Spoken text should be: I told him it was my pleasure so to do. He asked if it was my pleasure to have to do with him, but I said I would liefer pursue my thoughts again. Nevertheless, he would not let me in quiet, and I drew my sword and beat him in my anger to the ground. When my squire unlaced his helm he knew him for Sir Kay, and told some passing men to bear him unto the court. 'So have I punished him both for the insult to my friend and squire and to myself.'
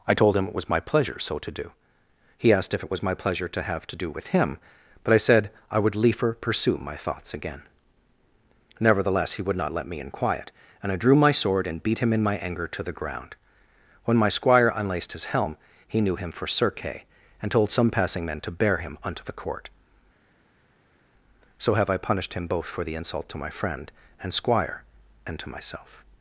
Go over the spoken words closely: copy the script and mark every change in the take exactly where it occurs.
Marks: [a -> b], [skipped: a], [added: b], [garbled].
I told him it was my pleasure so to do. He asked if it was my pleasure to have to do with him, but I said I would liefer pursue my thoughts again. Nevertheless, he would not let me in quiet, and I drew my sword and beat him in my anger to the ground. When my squire unlaced his helm he knew him for Sir Kay, and told some passing men to bear him unto the court. 'So have I punished him both for the insult to my friend and squire and to myself.'